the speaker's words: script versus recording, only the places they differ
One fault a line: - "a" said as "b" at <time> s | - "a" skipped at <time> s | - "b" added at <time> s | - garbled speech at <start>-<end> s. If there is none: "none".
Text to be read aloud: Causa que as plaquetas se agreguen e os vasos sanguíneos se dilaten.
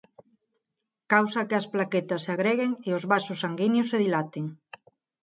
none